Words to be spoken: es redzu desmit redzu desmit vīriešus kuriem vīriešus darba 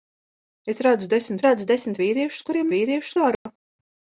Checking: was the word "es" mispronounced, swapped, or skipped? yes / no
no